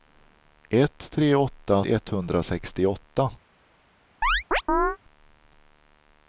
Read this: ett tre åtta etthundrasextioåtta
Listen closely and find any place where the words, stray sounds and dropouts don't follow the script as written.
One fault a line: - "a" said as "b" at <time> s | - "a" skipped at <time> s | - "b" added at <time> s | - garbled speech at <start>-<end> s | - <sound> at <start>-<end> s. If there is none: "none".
- chirp at 4.2-5.0 s